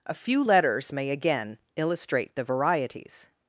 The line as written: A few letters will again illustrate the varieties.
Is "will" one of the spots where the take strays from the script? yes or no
yes